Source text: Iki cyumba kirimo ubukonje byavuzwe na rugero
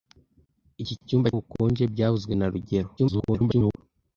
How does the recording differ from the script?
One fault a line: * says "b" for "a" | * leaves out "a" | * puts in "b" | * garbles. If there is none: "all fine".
* leaves out "kirimo"
* garbles